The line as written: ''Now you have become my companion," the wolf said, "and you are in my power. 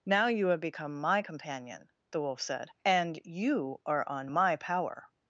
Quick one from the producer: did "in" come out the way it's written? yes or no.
no